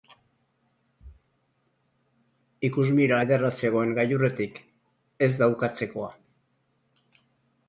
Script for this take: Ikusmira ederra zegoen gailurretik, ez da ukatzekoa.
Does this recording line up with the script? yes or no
yes